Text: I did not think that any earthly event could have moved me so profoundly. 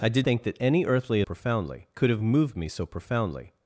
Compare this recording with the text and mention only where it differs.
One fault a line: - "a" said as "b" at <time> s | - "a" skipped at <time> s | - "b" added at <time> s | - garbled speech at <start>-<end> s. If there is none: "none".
- "not" skipped at 0.3 s
- "event" said as "profoundly" at 1.2 s